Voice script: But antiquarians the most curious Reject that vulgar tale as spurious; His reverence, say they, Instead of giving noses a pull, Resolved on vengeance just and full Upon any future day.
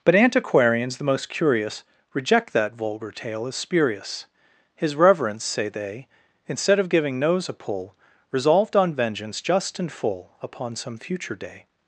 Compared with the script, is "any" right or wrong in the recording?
wrong